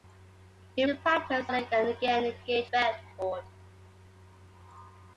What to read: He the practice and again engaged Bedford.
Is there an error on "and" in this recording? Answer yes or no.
no